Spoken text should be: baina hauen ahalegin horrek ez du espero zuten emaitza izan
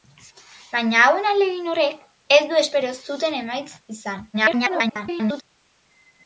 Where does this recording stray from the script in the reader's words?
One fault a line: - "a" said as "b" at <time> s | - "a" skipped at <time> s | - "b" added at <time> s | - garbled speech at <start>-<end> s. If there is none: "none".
- garbled speech at 4.3-5.4 s